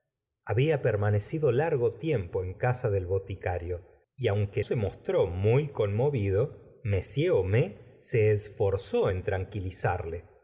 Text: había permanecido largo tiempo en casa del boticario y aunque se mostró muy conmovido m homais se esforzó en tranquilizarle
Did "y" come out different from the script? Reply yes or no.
no